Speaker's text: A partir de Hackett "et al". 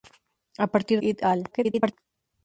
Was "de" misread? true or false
true